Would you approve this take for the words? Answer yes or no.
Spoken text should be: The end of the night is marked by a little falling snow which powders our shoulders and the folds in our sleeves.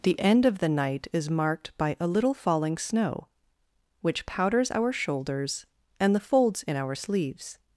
yes